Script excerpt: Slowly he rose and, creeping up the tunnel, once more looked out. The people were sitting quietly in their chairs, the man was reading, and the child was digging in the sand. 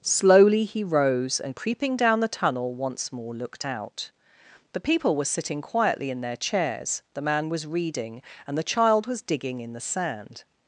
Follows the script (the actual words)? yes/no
no